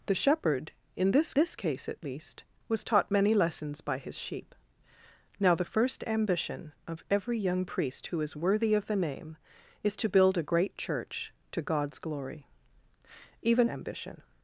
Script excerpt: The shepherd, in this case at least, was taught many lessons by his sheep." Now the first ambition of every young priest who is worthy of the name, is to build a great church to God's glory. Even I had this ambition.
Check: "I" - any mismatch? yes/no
yes